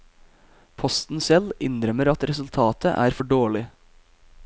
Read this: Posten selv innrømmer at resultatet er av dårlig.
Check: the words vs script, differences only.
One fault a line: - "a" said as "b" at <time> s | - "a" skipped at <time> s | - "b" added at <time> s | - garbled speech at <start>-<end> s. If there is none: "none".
- "av" said as "for" at 3.1 s